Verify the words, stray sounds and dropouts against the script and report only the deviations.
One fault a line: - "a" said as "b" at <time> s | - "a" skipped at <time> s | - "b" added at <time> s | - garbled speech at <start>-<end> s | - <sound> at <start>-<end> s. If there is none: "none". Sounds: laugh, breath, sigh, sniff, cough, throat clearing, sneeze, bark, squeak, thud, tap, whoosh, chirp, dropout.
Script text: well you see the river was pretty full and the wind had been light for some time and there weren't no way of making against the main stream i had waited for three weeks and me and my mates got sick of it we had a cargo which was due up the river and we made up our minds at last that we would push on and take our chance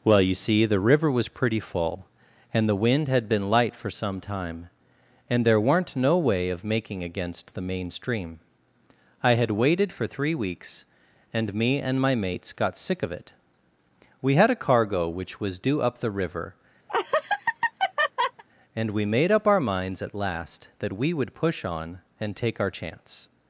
- laugh at 16.9-18.4 s